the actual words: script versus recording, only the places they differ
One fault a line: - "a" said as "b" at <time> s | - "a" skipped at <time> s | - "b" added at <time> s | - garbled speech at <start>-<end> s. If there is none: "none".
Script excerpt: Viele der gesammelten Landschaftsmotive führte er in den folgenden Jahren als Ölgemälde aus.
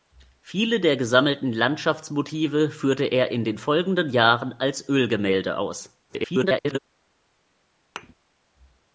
- garbled speech at 6.1-6.8 s